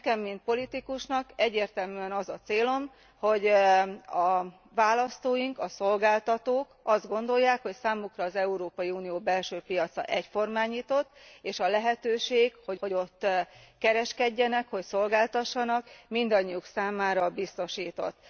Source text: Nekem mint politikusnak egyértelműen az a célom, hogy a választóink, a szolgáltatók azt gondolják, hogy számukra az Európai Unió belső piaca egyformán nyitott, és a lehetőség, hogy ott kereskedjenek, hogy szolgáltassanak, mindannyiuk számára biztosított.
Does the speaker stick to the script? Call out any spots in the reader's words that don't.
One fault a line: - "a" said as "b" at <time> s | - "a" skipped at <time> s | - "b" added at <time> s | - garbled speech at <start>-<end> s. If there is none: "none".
- "hogy" added at 12.8 s